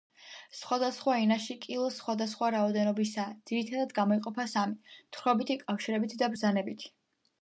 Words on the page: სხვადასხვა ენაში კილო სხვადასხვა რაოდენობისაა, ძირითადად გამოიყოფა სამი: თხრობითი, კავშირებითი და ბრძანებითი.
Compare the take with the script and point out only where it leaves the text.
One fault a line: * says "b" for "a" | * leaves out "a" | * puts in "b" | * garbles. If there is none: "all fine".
all fine